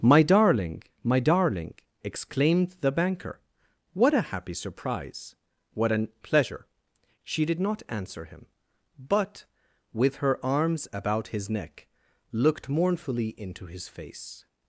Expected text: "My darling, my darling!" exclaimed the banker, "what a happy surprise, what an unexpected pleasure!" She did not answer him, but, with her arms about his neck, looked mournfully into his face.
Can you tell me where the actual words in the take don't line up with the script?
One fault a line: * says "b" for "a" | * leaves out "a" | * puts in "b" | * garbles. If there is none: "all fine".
* leaves out "unexpected"